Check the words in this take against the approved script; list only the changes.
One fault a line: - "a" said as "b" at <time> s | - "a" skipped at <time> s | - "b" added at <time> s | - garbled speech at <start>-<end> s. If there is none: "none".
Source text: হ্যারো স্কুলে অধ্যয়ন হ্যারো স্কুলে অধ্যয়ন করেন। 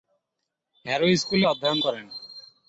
- "হ্যারো স্কুলে অধ্যয়ন" skipped at 1.8 s